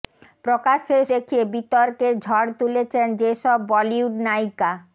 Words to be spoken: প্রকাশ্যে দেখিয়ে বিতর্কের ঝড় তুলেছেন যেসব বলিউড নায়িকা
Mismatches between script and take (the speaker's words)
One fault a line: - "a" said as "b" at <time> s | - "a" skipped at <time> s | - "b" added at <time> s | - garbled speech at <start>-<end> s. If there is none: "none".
none